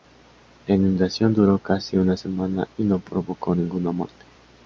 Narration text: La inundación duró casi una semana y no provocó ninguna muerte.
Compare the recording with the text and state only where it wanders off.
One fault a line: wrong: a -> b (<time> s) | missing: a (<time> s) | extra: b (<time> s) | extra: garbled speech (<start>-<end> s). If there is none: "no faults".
no faults